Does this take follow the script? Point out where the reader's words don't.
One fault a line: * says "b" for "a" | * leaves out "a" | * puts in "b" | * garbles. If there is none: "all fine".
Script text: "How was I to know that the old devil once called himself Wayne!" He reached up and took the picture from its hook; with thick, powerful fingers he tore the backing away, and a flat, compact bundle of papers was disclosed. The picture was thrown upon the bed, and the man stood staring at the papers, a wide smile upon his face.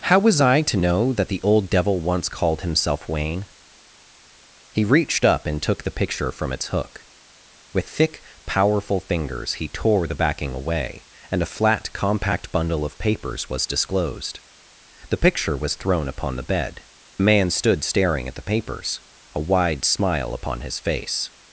* leaves out "and"